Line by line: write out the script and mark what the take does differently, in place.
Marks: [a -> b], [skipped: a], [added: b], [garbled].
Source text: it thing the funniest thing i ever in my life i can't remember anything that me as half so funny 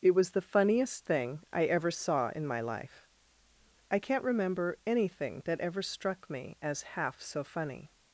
it [thing -> was] the funniest thing i ever [added: saw] in my life i can't remember anything that [added: ever struck] me as half so funny